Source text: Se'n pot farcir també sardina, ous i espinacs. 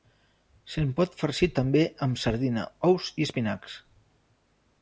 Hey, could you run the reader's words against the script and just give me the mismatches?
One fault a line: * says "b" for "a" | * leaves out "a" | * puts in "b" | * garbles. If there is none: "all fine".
* puts in "amb"